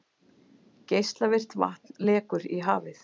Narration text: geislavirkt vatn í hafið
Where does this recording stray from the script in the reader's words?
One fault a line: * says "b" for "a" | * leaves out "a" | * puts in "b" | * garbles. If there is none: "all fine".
* puts in "lekur"